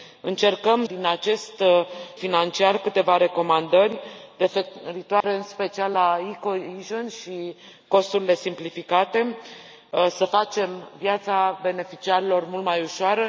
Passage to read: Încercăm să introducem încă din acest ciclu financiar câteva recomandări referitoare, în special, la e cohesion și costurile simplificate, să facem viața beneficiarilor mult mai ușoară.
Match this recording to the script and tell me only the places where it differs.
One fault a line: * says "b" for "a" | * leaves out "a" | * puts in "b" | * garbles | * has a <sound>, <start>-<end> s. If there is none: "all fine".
* leaves out "să introducem încă"
* leaves out "ciclu"
* has a dropout, 5.2-5.2 s